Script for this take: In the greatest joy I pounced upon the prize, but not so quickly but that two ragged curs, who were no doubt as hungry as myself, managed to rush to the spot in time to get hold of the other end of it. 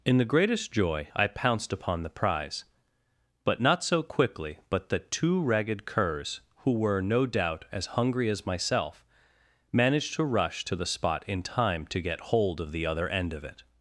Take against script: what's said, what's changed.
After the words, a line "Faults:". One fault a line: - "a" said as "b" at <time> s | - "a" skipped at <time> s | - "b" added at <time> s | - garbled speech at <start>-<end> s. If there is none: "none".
In the greatest joy I pounced upon the prize, but not so quickly but that two ragged curs, who were no doubt as hungry as myself, managed to rush to the spot in time to get hold of the other end of it.
Faults:
none